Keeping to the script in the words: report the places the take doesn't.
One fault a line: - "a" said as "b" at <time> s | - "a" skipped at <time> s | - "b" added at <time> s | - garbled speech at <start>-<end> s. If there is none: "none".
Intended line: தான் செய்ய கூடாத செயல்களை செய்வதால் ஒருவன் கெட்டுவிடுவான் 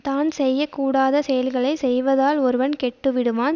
none